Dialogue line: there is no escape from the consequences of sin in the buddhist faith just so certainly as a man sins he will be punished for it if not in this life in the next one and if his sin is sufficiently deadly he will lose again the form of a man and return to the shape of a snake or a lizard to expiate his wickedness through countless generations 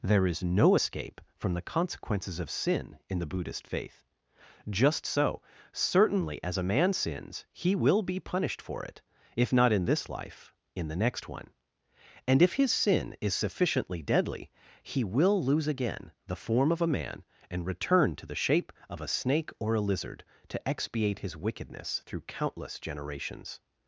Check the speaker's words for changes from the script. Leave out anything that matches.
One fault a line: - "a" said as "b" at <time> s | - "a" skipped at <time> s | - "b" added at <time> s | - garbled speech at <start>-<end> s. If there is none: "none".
none